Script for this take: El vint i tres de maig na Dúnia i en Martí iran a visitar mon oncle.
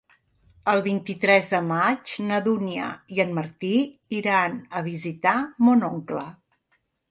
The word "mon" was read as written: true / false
true